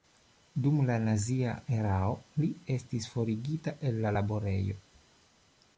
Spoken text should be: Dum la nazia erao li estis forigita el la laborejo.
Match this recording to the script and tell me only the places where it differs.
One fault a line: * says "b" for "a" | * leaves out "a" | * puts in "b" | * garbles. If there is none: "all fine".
all fine